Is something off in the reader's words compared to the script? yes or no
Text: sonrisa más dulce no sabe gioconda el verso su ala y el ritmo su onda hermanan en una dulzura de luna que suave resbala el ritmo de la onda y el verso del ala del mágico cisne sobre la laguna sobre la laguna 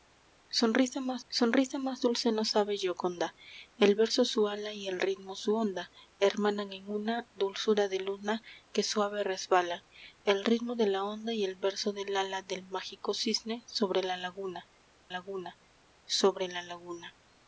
yes